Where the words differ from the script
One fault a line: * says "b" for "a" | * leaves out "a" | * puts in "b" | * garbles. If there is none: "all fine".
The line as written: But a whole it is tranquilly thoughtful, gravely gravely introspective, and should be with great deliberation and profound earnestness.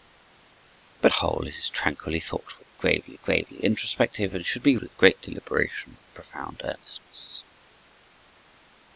all fine